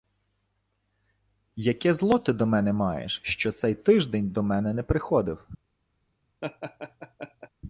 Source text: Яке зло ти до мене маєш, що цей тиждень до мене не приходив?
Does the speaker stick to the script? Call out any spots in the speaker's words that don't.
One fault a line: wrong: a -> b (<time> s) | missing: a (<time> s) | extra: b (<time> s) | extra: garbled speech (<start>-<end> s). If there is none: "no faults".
no faults